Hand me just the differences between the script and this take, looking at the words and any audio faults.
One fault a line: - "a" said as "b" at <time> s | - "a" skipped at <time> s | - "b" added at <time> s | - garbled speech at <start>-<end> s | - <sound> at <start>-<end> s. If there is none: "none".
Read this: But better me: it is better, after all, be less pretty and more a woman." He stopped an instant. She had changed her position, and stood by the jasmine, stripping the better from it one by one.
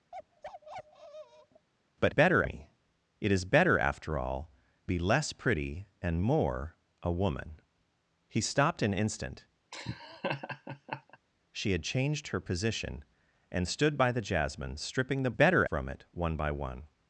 - bark at 0.1-1.7 s
- laugh at 9.7-11.2 s